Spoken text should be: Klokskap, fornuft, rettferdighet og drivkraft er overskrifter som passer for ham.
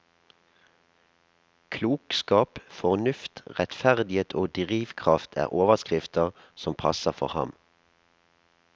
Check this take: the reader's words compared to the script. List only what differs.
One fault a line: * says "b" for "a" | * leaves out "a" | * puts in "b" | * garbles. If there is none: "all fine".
all fine